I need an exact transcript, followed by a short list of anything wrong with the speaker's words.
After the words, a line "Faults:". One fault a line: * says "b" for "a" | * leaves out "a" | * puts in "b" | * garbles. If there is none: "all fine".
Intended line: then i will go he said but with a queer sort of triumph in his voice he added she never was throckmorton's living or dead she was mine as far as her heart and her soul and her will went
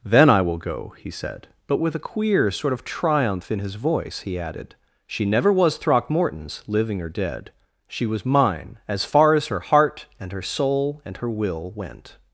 then i will go he said but with a queer sort of triumph in his voice he added she never was throckmorton's living or dead she was mine as far as her heart and her soul and her will went
Faults:
all fine